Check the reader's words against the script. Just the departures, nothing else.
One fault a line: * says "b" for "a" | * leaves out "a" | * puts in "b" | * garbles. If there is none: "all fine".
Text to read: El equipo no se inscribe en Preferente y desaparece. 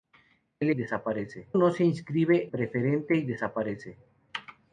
* says "desaparece" for "equipo"
* leaves out "en"